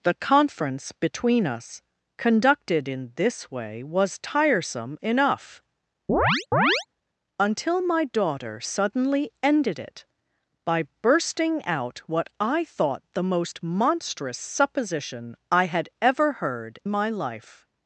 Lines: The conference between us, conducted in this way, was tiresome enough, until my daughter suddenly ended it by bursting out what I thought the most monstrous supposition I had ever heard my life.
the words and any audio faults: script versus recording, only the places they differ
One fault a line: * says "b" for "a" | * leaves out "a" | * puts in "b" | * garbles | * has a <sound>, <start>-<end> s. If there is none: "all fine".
* has a chirp, 6.1-6.9 s